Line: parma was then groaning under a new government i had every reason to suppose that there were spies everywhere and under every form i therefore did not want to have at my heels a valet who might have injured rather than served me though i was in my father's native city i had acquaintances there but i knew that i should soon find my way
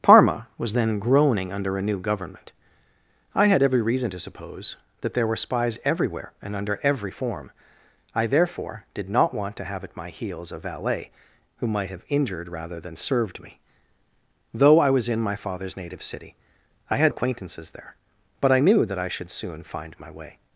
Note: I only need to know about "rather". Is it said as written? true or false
true